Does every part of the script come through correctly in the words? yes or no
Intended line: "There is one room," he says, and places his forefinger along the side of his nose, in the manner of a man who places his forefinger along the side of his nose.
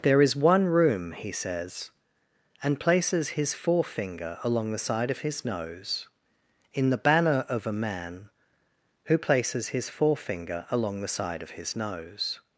no